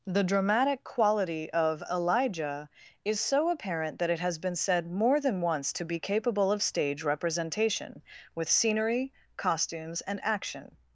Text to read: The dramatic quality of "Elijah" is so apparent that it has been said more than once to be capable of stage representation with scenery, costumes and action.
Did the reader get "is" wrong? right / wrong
right